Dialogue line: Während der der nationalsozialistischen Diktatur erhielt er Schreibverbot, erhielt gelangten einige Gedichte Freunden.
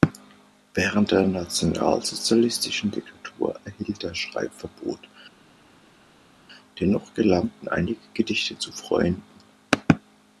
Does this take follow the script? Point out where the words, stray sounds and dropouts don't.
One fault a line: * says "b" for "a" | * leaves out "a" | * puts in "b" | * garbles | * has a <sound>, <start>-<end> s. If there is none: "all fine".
* leaves out "der"
* says "dennoch" for "erhielt"
* puts in "zu"